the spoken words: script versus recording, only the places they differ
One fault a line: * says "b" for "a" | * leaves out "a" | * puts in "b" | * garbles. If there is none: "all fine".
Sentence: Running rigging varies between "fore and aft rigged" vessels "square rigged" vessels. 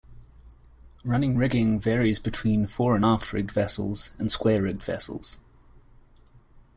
* puts in "and"